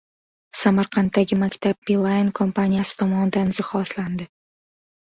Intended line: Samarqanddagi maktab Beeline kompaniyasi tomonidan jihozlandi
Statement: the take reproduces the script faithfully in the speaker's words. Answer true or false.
true